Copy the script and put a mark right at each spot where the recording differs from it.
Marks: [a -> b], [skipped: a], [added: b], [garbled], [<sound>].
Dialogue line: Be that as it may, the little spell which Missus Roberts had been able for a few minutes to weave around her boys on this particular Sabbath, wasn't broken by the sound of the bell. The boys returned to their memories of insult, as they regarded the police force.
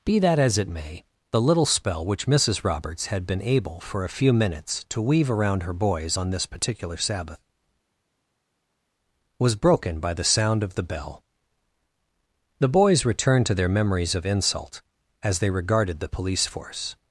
Be that as it may, the little spell which Missus Roberts had been able for a few minutes to weave around her boys on this particular Sabbath, [wasn't -> was] broken by the sound of the bell. The boys returned to their memories of insult, as they regarded the police force.